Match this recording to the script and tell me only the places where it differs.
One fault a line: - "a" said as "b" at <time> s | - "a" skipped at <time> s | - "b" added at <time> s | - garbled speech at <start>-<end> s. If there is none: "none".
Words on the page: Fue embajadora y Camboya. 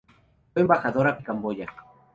none